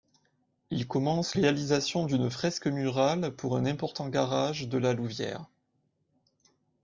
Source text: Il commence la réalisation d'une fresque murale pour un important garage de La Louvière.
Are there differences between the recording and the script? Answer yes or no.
yes